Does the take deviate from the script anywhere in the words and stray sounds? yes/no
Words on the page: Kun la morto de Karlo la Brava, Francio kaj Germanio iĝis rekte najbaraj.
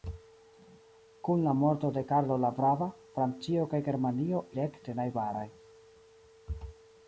yes